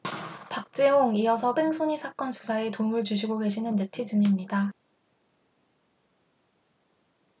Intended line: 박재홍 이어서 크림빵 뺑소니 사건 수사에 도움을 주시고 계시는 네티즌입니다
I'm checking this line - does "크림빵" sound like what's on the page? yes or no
no